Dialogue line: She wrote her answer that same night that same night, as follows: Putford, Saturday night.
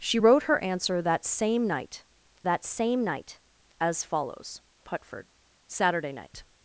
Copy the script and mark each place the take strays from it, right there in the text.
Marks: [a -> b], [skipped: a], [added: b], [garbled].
She wrote her answer that same night that same night, as follows: Putford, Saturday night.